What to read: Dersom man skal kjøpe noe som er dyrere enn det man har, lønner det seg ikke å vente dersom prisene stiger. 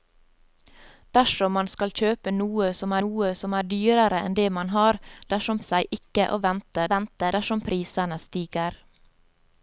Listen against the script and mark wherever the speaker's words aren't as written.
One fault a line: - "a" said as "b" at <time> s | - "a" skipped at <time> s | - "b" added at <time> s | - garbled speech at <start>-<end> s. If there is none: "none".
- "noe som" added at 3.0 s
- "lønner" said as "dersom" at 5.3 s
- "vente" added at 7.0 s